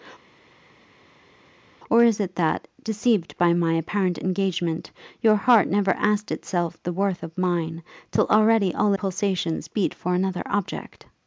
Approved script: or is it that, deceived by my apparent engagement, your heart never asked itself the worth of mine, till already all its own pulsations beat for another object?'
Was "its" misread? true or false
true